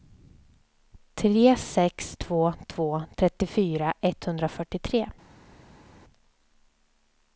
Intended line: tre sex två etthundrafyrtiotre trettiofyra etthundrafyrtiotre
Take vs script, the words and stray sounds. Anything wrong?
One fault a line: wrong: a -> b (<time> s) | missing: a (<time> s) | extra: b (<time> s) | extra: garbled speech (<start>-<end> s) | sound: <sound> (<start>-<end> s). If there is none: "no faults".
wrong: etthundrafyrtiotre -> två (2.7 s)